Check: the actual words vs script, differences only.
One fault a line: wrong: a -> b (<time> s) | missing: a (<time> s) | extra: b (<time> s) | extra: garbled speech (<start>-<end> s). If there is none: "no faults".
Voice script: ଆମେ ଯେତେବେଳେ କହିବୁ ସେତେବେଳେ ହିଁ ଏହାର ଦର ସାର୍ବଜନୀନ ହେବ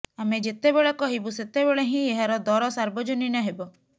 no faults